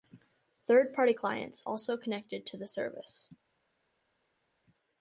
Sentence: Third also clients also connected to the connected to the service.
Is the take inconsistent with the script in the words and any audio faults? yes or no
yes